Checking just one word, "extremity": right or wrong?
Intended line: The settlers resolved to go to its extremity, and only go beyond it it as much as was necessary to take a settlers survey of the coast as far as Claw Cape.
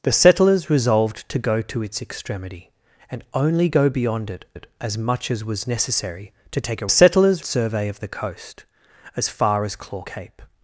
right